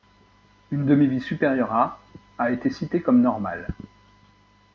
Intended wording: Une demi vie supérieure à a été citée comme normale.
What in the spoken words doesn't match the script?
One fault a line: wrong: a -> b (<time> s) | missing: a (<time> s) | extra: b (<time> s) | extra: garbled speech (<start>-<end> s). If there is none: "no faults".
no faults